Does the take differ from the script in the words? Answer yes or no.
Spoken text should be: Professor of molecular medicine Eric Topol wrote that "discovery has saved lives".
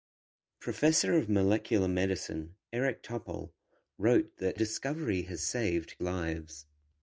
no